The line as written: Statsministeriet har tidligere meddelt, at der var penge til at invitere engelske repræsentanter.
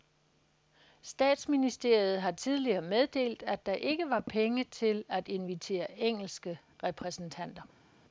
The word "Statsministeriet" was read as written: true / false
true